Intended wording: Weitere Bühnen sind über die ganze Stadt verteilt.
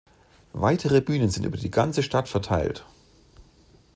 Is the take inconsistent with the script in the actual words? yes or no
no